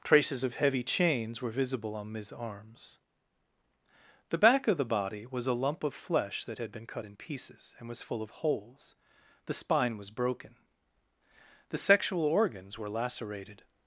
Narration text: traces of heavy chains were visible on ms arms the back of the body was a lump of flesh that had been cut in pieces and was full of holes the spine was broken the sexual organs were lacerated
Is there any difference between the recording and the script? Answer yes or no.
no